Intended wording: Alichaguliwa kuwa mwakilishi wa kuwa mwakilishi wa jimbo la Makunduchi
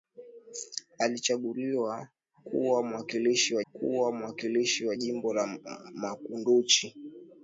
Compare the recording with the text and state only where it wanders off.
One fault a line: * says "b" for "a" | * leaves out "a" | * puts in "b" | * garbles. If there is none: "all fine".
all fine